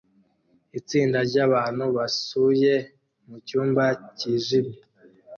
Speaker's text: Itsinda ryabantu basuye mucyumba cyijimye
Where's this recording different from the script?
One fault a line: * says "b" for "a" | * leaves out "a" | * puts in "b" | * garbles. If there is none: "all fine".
all fine